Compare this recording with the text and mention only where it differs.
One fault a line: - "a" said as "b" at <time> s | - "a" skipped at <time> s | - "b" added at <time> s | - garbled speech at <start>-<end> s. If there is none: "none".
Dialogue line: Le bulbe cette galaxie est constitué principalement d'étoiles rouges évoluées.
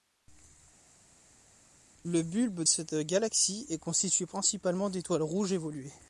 none